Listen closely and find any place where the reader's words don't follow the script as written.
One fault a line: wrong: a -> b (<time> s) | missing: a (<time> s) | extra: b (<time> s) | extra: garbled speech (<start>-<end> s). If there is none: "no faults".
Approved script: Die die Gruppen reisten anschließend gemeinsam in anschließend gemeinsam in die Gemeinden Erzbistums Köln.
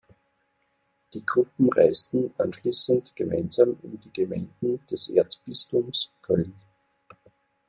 missing: die (1.2 s)
missing: anschließend gemeinsam in (4.0 s)
extra: des (4.9 s)